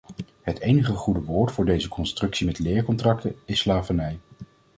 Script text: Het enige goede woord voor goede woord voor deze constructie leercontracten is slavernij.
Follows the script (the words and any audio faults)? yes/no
no